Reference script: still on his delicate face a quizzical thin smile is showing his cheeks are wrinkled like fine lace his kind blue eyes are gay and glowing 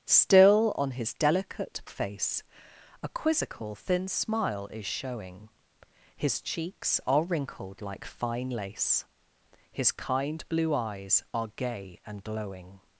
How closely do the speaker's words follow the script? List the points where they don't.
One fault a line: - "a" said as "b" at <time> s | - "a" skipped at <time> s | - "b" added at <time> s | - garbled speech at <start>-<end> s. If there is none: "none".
none